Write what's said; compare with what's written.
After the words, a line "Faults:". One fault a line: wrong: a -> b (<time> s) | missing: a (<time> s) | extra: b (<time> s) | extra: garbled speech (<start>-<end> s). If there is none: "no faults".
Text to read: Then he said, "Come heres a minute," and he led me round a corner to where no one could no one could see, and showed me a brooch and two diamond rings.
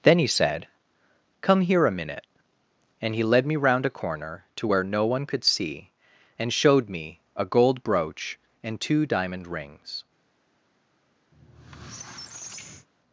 Then he said, "Come here a minute," and he led me round a corner to where no one could see, and showed me a gold brooch and two diamond rings.
Faults:
wrong: heres -> here (1.6 s)
missing: no one could (5.4 s)
extra: gold (7.4 s)